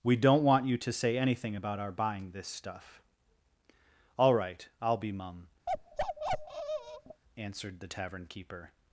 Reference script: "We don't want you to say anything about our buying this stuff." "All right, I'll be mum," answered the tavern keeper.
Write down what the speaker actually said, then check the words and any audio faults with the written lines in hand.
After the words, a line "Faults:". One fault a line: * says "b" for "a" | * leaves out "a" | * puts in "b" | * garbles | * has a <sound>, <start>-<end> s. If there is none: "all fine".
"We don't want you to say anything about our buying this stuff." "All right, I'll be mum," answered the tavern keeper.
Faults:
* has a bark, 5.7-7.2 s